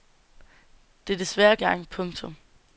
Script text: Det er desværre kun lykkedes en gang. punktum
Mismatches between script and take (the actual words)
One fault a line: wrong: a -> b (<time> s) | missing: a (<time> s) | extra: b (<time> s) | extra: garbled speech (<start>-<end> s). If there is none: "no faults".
missing: kun lykkedes en (1.6 s)